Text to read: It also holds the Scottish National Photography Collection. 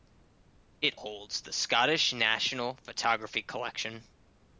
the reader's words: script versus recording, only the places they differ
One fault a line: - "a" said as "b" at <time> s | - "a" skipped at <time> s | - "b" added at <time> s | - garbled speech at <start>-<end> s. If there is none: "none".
- "also" skipped at 1.0 s